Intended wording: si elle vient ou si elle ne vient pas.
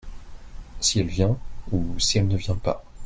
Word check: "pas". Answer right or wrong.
right